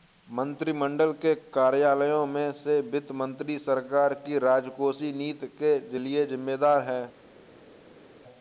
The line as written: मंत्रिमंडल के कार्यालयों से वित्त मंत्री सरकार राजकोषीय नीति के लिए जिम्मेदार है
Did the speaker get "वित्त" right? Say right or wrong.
right